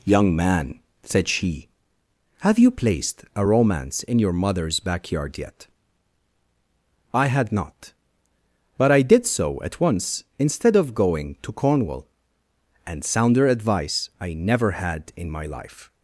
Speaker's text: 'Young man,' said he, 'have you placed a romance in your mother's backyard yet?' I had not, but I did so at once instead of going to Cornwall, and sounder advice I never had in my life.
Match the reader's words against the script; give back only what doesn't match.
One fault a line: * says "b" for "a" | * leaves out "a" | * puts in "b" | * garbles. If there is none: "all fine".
* says "she" for "he"